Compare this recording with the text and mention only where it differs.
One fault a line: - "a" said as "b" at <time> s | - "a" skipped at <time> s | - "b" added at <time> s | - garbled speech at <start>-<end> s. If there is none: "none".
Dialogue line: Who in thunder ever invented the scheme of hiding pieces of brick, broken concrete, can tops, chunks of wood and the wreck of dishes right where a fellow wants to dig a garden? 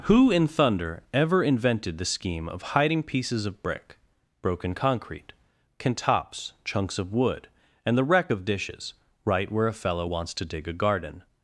none